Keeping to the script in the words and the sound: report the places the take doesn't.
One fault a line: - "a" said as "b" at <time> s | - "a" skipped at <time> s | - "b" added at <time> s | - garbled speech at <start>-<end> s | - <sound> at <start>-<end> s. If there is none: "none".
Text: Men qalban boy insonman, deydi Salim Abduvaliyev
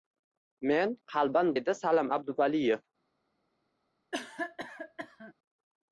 - "boy insonman" skipped at 1.5 s
- cough at 4.1-5.3 s